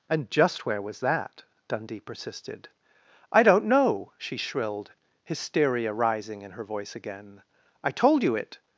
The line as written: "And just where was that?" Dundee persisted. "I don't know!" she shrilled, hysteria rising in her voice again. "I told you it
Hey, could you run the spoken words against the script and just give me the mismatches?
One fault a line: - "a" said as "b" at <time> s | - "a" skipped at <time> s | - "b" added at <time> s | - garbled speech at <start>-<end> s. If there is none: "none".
none